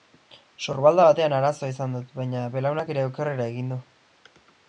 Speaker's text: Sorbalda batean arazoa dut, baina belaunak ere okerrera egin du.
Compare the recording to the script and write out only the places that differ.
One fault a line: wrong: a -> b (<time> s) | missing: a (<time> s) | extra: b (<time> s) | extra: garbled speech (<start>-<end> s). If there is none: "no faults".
extra: izan (1.7 s)